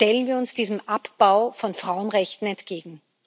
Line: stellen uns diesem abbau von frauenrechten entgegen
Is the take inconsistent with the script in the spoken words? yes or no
yes